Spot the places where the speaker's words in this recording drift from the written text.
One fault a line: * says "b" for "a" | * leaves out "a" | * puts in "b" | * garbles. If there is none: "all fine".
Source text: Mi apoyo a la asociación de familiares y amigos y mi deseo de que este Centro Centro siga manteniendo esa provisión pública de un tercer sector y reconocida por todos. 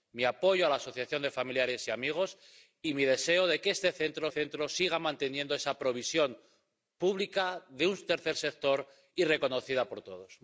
all fine